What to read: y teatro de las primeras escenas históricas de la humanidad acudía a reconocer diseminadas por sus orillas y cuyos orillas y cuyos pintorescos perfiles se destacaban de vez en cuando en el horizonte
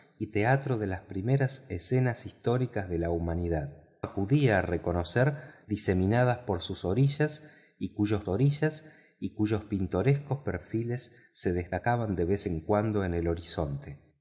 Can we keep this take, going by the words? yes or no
yes